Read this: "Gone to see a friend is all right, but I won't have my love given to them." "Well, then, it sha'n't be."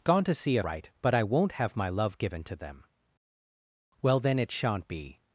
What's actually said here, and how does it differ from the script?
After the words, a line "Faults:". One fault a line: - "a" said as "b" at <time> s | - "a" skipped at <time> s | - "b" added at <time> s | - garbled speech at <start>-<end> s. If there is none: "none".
"Gone to see a right, but I won't have my love given to them." "Well, then, it sha'n't be."
Faults:
- "friend is all" skipped at 0.6 s